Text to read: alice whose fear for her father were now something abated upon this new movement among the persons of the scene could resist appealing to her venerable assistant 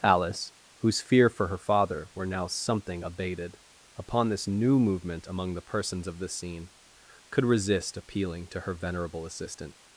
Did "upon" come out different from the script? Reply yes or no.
no